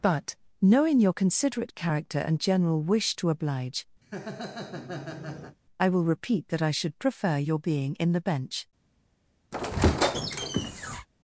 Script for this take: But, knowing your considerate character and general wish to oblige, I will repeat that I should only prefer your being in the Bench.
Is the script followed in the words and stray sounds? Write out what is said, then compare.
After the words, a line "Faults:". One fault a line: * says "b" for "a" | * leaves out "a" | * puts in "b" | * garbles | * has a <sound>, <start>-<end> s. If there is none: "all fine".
But, knowing your considerate character and general wish to oblige, I will repeat that I should prefer your being in the Bench.
Faults:
* has a laugh, 4.0-5.6 s
* leaves out "only"
* has a squeak, 9.5-11.1 s